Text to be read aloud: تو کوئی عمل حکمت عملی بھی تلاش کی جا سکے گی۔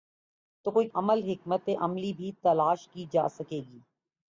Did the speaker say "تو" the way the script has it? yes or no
yes